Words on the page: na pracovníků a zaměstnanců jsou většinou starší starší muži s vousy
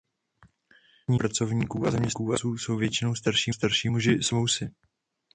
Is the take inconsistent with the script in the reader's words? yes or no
no